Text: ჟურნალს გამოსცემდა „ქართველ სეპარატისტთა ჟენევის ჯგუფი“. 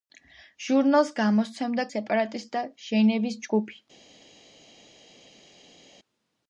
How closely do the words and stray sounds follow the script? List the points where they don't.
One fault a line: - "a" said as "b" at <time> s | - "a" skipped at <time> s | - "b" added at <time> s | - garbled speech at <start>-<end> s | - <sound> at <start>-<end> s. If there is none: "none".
- "ქართველ" skipped at 1.9 s